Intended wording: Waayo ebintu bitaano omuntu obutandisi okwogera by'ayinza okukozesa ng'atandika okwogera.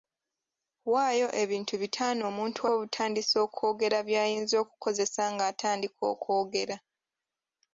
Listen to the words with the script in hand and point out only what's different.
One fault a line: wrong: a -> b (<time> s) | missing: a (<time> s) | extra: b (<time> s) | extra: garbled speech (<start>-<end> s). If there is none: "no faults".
no faults